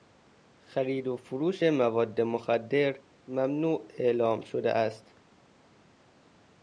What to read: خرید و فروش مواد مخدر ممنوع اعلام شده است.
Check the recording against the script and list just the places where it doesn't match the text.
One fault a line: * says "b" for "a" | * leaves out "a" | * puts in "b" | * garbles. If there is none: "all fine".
all fine